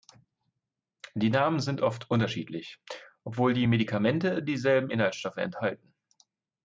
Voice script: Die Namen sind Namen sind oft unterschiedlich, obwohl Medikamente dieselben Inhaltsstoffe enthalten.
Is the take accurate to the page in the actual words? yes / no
no